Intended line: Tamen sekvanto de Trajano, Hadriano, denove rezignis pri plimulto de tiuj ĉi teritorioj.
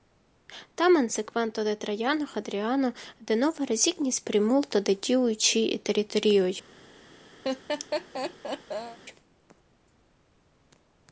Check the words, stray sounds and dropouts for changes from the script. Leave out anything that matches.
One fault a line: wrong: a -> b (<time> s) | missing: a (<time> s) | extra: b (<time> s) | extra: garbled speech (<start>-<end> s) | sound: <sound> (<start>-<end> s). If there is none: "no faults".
missing: pri (4.2 s)
sound: laugh (7.4-9.0 s)